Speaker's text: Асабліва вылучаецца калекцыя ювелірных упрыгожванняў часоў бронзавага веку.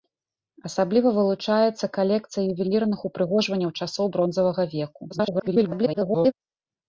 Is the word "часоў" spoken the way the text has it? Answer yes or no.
yes